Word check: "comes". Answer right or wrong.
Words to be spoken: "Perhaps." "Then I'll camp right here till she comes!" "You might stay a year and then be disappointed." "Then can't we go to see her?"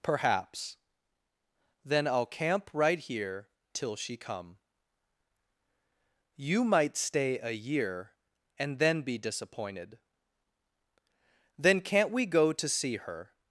wrong